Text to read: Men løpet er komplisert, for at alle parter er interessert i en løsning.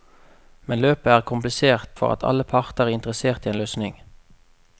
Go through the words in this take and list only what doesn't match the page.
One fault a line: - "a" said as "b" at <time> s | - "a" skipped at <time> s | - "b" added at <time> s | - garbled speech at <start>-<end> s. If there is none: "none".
none